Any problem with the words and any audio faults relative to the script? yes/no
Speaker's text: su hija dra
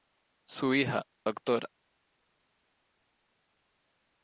no